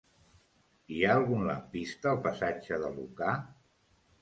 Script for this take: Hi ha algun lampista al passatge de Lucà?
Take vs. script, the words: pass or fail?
pass